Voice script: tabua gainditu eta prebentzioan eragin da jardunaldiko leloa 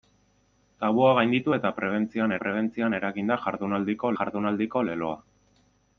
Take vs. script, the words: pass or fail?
fail